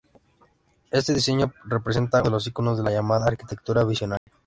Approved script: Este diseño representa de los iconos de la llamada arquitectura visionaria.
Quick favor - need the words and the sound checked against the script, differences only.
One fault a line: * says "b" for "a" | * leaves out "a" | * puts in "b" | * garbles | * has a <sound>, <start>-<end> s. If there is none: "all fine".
* has a dropout, 4.2-4.3 s